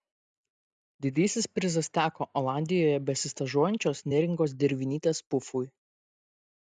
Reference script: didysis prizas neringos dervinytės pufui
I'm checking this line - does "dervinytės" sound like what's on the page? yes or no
yes